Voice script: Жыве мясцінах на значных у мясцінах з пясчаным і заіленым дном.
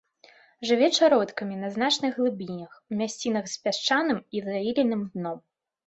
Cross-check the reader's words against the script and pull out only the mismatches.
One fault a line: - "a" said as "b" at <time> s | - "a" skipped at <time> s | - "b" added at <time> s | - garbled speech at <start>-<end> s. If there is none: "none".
- "мясцінах" said as "чародкамі" at 1.0 s
- "глыбінях" added at 2.2 s